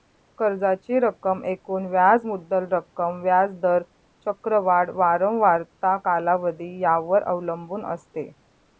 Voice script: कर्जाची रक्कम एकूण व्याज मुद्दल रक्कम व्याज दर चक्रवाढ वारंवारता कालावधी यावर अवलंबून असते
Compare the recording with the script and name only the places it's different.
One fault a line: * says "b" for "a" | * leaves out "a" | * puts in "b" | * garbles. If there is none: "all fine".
all fine